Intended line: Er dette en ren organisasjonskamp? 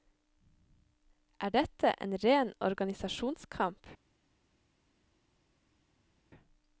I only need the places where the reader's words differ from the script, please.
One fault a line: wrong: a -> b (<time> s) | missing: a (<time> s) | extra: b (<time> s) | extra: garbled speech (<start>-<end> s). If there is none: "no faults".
no faults